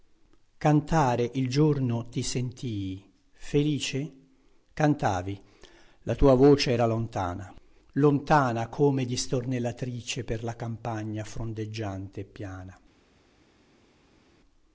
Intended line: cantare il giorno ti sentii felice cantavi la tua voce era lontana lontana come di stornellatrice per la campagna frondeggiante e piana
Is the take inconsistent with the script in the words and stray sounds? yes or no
no